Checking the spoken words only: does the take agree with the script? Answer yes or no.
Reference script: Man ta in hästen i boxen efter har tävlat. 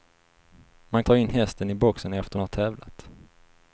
yes